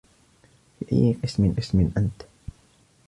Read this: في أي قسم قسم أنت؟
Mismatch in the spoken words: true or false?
false